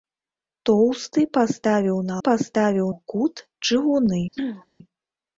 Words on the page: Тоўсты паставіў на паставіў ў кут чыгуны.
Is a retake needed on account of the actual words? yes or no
no